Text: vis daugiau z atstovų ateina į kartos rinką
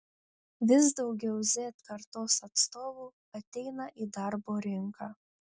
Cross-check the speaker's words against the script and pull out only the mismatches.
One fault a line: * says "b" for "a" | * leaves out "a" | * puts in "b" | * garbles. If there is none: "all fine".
* puts in "kartos"
* says "darbo" for "kartos"